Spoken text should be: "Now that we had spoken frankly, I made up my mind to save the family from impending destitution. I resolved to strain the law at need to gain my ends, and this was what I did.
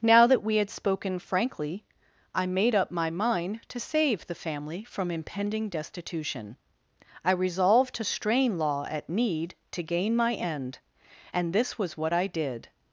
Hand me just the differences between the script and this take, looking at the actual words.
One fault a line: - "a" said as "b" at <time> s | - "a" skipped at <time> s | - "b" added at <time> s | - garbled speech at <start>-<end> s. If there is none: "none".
- "the" skipped at 8.6 s
- "ends" said as "end" at 10.3 s